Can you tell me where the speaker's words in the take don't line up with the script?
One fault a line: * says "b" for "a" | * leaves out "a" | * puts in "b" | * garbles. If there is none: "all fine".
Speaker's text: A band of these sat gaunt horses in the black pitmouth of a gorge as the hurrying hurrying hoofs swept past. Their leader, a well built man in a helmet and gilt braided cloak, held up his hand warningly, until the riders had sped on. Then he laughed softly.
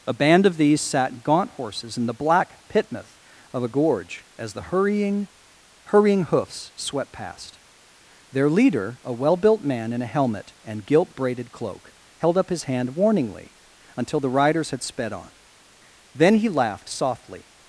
all fine